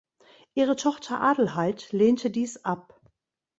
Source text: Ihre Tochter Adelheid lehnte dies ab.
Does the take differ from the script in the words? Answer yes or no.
no